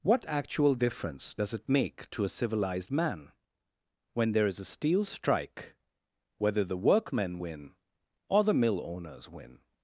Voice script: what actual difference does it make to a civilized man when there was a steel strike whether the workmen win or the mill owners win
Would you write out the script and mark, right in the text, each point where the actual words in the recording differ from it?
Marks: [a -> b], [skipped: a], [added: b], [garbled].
what actual difference does it make to a civilized man when there [was -> is] a steel strike whether the workmen win or the mill owners win